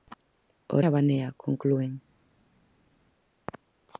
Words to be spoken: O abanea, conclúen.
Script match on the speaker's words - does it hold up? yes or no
yes